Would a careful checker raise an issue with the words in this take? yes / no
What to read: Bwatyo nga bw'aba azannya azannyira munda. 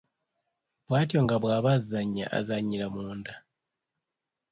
no